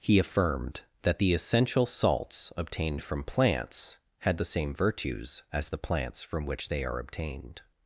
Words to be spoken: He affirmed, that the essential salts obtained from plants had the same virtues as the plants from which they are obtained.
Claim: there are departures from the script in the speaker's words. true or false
false